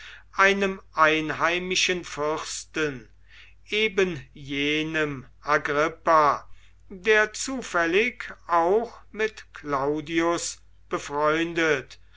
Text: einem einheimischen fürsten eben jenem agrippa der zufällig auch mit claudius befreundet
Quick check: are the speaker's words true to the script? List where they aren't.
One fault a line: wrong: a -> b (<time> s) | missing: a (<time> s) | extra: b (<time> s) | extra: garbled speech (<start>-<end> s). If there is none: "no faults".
no faults